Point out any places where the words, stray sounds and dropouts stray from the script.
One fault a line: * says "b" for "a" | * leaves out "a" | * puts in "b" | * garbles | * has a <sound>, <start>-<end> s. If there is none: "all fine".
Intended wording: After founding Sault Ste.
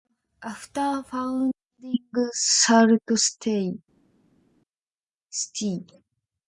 all fine